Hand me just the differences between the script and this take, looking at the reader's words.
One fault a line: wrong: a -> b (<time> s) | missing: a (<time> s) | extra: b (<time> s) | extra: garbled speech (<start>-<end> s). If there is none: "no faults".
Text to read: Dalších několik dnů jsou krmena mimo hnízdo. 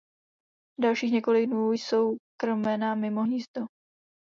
no faults